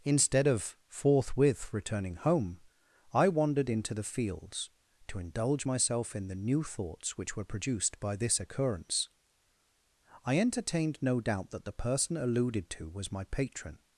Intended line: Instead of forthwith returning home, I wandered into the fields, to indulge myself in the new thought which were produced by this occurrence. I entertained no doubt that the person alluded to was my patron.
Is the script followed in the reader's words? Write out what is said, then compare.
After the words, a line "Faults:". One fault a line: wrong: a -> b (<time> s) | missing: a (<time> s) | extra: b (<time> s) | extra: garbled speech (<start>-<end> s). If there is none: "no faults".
Instead of forthwith returning home, I wandered into the fields, to indulge myself in the new thoughts which were produced by this occurrence. I entertained no doubt that the person alluded to was my patron.
Faults:
wrong: thought -> thoughts (6.6 s)